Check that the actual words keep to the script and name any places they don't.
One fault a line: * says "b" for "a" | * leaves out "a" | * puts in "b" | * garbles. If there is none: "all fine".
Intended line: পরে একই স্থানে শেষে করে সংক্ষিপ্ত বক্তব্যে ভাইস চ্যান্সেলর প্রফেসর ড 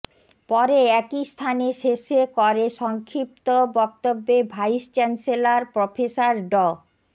all fine